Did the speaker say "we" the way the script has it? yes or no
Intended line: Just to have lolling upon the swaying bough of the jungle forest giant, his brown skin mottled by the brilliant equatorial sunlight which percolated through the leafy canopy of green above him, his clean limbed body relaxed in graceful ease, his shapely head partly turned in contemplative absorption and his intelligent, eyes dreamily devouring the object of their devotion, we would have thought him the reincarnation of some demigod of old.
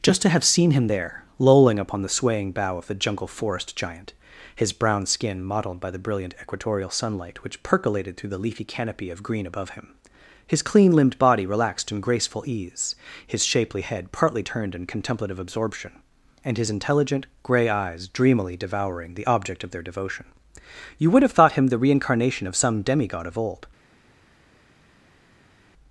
no